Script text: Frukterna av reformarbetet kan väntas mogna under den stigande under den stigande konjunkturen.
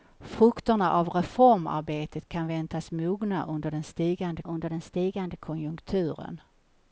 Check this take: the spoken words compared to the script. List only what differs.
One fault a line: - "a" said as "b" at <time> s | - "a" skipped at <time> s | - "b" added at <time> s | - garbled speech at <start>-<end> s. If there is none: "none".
none